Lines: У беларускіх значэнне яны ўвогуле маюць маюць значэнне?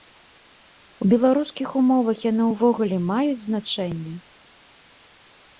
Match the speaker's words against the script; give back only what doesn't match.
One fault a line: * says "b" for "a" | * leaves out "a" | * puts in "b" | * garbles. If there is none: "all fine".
* says "умовах" for "значэнне"
* leaves out "маюць"